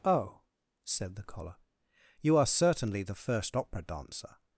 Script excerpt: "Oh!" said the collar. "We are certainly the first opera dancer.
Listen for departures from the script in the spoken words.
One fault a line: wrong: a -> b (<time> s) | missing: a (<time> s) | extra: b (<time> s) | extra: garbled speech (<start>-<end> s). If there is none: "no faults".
wrong: We -> You (2.2 s)